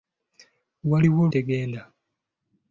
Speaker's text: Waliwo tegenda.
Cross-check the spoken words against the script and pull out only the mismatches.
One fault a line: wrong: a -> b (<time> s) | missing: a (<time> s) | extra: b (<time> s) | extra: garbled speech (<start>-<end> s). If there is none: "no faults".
no faults